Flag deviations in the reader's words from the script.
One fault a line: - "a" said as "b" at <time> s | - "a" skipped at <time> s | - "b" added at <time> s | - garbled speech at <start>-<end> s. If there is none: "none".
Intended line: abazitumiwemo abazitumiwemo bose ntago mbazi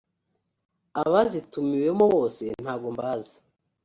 - "abazitumiwemo" skipped at 2.0 s